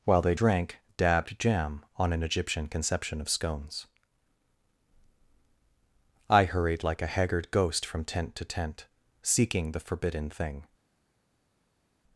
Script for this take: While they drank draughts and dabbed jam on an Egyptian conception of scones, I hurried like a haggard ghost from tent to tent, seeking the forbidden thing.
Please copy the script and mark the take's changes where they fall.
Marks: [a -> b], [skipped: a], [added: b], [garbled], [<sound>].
While they drank [skipped: draughts and] dabbed jam on an Egyptian conception of scones, I hurried like a haggard ghost from tent to tent, seeking the forbidden thing.